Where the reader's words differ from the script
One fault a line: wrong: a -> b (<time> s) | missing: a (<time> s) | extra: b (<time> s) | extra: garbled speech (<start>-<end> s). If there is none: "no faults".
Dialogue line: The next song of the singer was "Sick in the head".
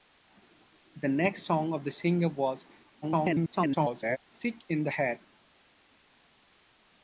extra: garbled speech (3.0-4.2 s)